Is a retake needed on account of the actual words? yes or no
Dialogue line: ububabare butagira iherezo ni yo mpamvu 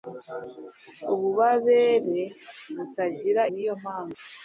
yes